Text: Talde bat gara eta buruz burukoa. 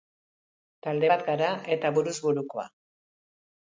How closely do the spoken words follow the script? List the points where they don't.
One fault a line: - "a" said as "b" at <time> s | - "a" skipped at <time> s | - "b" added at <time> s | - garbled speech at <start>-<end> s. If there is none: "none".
none